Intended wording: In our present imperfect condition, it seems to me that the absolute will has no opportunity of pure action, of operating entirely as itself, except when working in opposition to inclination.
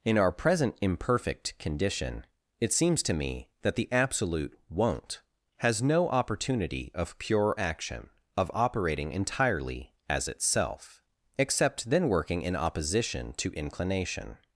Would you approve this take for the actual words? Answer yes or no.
no